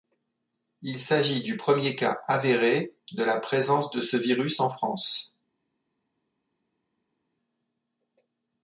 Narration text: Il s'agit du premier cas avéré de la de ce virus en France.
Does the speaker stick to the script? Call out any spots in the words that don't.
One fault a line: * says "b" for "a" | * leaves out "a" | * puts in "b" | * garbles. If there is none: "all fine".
* puts in "présence"